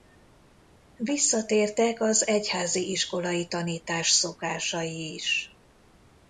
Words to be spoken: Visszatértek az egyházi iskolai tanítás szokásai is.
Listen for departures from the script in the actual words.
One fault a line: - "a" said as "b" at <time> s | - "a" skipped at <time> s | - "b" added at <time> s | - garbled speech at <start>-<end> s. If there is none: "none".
none